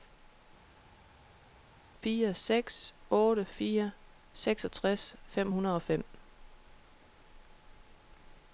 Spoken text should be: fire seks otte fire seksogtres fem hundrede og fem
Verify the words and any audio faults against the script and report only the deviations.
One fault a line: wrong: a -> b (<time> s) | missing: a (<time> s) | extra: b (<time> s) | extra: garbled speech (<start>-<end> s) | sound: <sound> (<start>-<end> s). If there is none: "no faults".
no faults